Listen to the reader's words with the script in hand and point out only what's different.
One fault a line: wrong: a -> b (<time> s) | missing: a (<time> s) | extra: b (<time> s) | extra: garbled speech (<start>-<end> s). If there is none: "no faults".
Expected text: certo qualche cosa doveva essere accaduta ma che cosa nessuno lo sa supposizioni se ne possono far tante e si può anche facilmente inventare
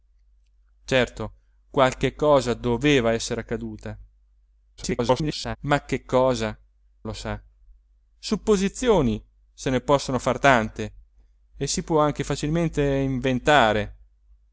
extra: garbled speech (4.8-5.6 s)
missing: nessuno (6.6 s)